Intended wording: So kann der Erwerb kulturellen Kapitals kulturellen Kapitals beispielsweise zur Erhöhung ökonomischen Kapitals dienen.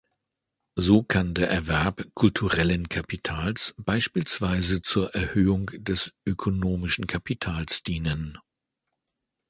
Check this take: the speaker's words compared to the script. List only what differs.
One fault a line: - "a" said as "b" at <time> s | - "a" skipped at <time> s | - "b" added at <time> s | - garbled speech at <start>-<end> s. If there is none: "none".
- "kulturellen Kapitals" skipped at 3.8 s
- "des" added at 5.7 s